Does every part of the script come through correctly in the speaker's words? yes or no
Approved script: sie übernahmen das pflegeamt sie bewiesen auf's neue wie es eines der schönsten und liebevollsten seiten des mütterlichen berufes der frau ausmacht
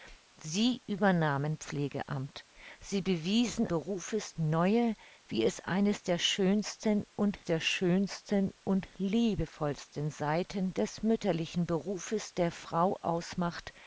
no